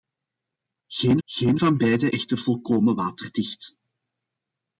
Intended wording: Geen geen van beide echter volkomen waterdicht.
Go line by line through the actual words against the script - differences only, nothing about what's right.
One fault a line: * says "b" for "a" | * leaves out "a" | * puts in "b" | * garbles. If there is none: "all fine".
all fine